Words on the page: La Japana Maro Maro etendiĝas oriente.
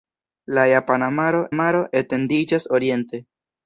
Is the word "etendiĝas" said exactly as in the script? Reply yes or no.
yes